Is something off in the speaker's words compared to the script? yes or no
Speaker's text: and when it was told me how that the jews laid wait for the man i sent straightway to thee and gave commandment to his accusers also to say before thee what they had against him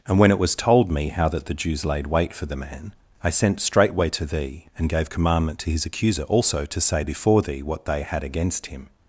yes